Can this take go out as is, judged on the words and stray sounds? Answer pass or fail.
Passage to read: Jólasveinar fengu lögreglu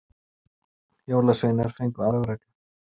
pass